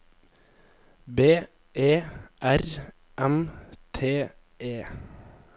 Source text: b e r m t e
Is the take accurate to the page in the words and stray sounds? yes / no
yes